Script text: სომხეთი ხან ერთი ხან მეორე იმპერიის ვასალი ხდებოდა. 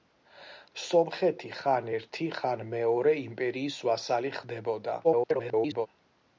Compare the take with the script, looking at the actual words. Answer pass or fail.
fail